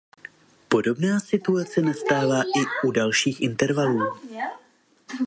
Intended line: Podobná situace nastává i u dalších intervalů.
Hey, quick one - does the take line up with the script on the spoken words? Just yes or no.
yes